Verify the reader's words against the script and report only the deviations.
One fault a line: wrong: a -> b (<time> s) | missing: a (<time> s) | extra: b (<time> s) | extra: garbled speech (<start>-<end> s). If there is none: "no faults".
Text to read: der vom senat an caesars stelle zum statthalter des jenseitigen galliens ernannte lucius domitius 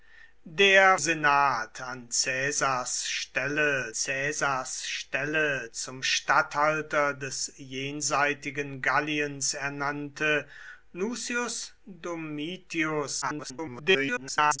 missing: vom (1.0 s)
extra: caesars stelle (3.9 s)
extra: garbled speech (13.2-14.6 s)